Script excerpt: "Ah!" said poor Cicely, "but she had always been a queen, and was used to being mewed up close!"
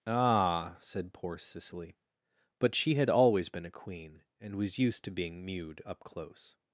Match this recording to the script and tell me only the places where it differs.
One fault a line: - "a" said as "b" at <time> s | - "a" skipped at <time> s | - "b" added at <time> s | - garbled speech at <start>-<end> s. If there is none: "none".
none